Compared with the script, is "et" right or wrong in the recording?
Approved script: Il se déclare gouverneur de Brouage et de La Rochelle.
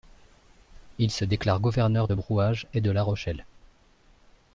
right